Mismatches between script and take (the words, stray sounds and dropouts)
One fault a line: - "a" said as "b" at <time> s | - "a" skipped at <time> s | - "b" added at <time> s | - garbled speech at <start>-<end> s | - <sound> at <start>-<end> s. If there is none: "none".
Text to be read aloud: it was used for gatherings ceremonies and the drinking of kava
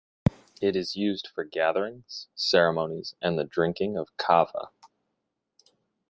- "was" said as "is" at 0.8 s